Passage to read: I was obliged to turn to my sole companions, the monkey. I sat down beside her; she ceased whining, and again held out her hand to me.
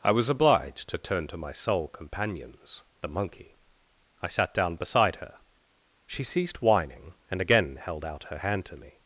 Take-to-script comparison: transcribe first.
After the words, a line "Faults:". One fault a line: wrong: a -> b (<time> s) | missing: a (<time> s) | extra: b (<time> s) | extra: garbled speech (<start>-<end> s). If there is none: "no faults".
I was obliged to turn to my sole companions, the monkey. I sat down beside her; she ceased whining, and again held out her hand to me.
Faults:
no faults